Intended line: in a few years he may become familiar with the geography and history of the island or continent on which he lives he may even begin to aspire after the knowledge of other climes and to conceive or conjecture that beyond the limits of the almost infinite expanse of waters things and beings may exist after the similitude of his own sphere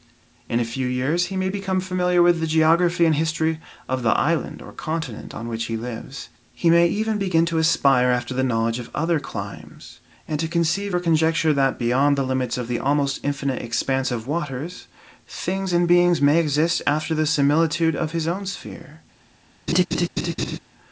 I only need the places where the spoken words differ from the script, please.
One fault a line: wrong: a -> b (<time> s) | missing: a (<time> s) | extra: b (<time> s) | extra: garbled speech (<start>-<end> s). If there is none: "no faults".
no faults